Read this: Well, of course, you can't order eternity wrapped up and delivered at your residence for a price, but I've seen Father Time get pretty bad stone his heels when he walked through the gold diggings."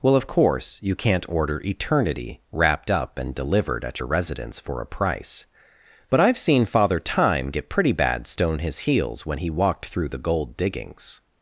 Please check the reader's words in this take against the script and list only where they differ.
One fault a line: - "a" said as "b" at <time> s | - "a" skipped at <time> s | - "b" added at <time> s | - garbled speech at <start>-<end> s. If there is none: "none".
none